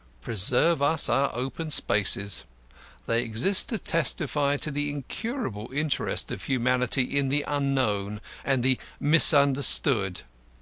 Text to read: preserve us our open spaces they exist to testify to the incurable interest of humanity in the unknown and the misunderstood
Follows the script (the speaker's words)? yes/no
yes